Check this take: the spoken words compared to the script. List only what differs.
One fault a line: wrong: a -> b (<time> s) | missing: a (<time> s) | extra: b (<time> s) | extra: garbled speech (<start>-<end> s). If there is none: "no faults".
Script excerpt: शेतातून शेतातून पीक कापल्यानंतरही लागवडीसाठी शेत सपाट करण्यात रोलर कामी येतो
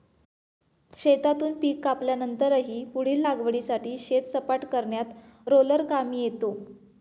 missing: शेतातून (1.5 s)
extra: पुढील (2.9 s)